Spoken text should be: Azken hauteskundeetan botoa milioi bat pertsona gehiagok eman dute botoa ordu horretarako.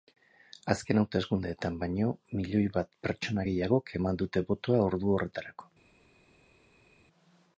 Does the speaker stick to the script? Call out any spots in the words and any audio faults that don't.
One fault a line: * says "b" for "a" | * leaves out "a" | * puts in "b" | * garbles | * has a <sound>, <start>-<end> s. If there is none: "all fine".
* says "baino" for "botoa"